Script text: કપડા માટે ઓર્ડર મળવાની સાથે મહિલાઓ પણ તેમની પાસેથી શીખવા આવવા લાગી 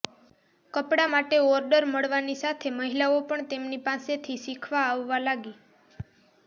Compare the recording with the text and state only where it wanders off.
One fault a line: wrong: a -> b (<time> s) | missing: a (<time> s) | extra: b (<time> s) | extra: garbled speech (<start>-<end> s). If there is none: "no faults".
no faults